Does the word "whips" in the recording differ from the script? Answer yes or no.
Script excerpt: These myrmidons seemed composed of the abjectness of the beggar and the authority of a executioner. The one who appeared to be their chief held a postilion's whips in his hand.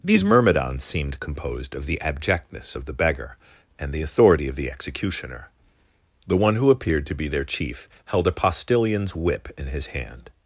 yes